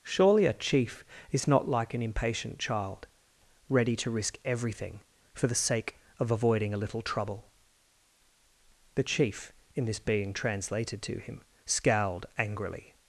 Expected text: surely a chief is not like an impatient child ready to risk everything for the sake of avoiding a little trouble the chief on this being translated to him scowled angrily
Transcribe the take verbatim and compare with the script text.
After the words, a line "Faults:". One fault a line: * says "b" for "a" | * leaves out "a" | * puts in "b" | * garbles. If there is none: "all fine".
surely a chief is not like an impatient child ready to risk everything for the sake of avoiding a little trouble the chief in this being translated to him scowled angrily
Faults:
* says "in" for "on"